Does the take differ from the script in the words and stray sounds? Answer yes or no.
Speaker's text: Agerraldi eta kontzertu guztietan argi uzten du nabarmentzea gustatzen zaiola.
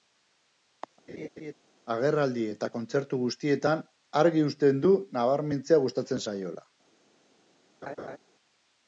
yes